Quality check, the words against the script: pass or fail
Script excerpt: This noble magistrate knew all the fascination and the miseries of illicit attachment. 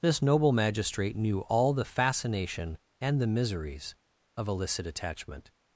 pass